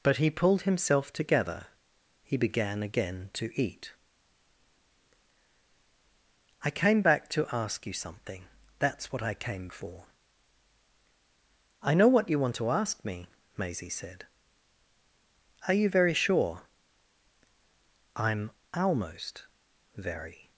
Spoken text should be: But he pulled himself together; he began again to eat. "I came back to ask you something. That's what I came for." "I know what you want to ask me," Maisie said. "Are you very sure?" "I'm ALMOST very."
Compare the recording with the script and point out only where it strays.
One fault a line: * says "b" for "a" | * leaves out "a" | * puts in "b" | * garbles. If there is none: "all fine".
all fine